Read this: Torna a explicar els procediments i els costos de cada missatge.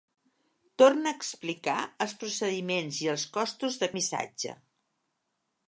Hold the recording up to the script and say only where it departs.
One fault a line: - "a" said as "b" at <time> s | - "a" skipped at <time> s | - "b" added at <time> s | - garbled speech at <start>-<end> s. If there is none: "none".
- "cada" skipped at 3.9 s